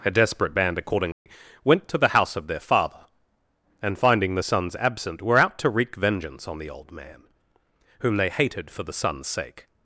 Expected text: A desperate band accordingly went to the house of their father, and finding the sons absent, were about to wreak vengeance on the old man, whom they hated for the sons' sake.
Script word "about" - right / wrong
wrong